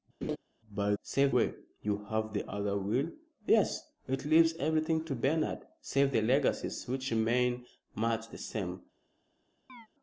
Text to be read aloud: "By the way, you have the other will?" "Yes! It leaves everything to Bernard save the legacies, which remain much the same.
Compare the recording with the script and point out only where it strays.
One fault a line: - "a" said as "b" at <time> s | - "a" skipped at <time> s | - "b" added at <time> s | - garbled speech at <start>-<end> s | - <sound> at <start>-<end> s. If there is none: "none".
- laugh at 0.2-0.4 s
- "the" said as "save" at 1.0 s
- chirp at 9.7-9.9 s